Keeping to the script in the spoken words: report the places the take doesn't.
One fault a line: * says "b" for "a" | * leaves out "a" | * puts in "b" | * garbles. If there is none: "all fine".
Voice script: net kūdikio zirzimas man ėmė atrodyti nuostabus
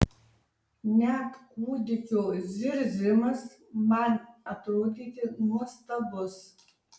* leaves out "ėmė"